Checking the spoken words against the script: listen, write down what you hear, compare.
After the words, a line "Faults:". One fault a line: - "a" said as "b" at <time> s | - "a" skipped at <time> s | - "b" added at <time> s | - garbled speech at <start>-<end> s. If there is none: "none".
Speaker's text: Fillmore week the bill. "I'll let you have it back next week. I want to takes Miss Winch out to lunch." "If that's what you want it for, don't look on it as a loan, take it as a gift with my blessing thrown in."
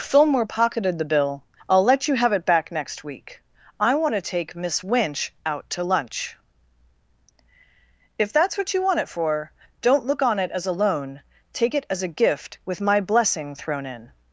Fillmore pocketed the bill. "I'll let you have it back next week. I want to take Miss Winch out to lunch." "If that's what you want it for, don't look on it as a loan, take it as a gift with my blessing thrown in."
Faults:
- "week" said as "pocketed" at 0.5 s
- "takes" said as "take" at 4.2 s